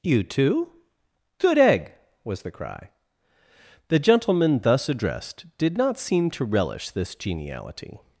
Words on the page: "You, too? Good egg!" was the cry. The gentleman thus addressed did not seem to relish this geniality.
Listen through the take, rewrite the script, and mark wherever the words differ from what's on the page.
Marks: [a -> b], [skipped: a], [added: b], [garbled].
"You, too? Good egg!" was the cry. The gentleman thus addressed did not seem to relish this geniality.